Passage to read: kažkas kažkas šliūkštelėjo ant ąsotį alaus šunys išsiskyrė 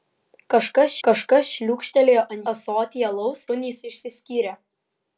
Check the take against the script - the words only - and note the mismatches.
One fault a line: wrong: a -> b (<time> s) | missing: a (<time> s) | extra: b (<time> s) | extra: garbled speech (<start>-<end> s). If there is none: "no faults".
no faults